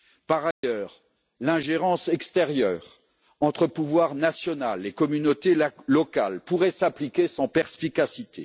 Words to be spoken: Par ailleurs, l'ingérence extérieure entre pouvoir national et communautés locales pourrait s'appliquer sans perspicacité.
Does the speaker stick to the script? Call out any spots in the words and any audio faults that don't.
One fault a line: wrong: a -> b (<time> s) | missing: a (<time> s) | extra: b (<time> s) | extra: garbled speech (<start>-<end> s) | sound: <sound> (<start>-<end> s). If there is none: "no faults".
sound: dropout (0.5-0.6 s)